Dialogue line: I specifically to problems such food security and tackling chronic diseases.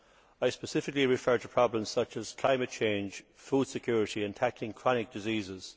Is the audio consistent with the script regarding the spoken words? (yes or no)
no